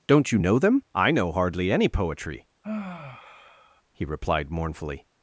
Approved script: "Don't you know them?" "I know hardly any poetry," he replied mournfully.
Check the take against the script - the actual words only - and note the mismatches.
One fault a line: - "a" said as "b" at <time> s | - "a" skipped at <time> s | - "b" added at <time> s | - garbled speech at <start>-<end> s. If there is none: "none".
none